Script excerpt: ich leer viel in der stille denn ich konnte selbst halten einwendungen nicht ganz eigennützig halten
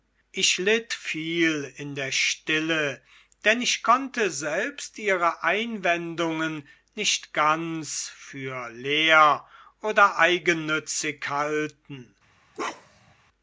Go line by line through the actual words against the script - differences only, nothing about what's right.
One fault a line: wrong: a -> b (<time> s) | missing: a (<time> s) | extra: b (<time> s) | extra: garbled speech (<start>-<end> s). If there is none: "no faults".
wrong: leer -> litt (0.6 s)
wrong: halten -> ihre (5.0 s)
extra: für leer oder (8.2 s)